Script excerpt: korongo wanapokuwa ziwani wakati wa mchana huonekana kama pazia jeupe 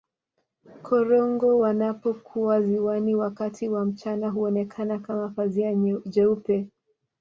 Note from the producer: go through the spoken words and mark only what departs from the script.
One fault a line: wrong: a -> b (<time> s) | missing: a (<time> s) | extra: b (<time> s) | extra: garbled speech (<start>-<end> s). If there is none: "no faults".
no faults